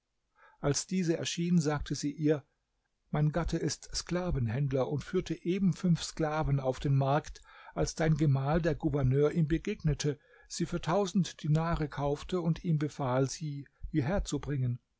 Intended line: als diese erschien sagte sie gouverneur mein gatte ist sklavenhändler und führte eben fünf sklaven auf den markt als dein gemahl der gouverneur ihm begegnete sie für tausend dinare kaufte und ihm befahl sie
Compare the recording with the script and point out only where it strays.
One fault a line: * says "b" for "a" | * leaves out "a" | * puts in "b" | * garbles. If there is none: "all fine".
* says "ihr" for "gouverneur"